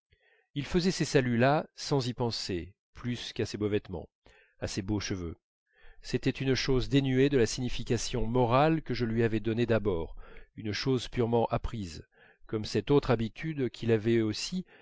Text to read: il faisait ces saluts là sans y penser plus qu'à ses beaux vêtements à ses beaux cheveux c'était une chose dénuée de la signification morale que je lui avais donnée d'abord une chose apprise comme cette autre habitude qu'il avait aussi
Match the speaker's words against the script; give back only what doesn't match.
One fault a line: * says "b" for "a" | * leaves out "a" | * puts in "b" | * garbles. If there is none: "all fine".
* puts in "purement"